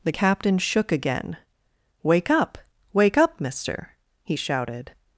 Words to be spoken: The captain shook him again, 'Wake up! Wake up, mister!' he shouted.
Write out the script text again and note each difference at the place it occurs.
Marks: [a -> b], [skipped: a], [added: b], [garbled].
The captain shook [skipped: him] again, 'Wake up! Wake up, mister!' he shouted.